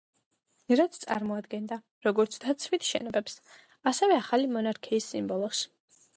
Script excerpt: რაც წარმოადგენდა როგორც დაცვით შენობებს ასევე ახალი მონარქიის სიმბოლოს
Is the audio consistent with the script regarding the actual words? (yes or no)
yes